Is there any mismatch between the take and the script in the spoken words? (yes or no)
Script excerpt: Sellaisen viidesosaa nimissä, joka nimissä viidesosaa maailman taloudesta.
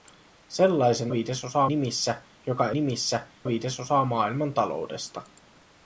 no